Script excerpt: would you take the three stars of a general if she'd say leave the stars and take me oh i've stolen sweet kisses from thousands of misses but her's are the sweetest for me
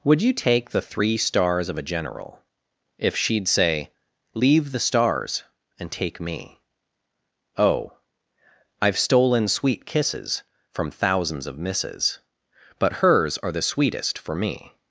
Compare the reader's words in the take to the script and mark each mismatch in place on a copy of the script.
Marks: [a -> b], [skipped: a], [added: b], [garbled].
would you take the three stars of a general if she'd say leave the stars and take me oh i've stolen sweet kisses from thousands of misses but her's are the sweetest for me